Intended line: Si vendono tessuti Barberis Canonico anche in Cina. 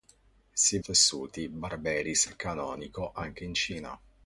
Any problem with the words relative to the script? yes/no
yes